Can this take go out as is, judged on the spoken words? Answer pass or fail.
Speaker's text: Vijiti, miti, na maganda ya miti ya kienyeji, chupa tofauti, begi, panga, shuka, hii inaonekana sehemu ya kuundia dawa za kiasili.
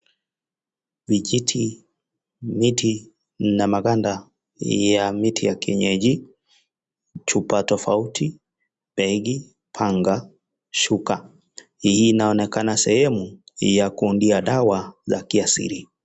pass